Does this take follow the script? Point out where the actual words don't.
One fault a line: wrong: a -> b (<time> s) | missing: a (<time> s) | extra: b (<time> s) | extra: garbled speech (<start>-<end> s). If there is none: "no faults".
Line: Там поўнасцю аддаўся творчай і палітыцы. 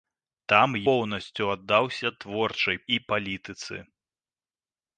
no faults